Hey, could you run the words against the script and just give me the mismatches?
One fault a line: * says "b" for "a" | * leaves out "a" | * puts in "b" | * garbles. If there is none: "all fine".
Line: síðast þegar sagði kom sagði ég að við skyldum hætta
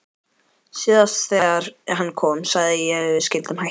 * says "hann" for "sagði"